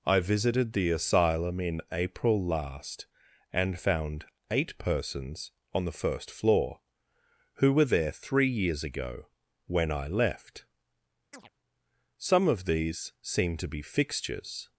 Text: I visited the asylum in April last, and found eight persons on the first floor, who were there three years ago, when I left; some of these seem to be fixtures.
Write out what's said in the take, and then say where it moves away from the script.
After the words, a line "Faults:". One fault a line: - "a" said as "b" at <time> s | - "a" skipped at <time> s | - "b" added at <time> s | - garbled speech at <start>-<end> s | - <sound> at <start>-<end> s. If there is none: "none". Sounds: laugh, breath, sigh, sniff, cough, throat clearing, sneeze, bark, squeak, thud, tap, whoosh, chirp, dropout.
I visited the asylum in April last, and found eight persons on the first floor, who were there three years ago, when I left; some of these seem to be fixtures.
Faults:
- chirp at 11.3-11.5 s